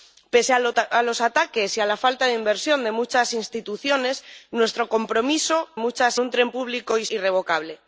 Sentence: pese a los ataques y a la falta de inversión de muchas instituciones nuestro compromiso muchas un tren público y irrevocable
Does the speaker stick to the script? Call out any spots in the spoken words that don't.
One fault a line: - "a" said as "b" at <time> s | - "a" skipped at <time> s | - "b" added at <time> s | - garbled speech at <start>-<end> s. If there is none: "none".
none